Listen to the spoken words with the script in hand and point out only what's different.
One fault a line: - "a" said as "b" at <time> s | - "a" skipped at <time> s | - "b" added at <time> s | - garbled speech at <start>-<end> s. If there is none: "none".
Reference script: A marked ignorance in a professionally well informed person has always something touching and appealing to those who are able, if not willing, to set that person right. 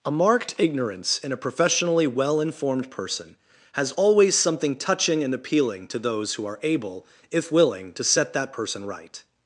- "not" skipped at 7.5 s